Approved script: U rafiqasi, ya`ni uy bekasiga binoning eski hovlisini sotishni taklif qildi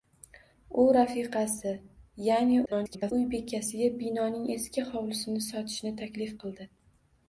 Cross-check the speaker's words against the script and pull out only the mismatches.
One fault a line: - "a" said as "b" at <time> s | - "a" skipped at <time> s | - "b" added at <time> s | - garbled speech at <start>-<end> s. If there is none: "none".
- garbled speech at 2.7-3.1 s